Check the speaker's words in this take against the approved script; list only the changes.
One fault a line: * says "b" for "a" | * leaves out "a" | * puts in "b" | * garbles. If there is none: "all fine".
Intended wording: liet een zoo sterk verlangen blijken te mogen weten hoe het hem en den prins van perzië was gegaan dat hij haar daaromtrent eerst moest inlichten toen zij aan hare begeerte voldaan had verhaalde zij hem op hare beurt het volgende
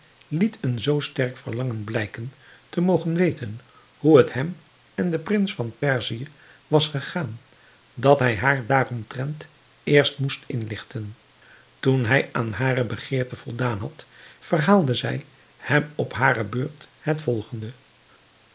* says "hij" for "zij"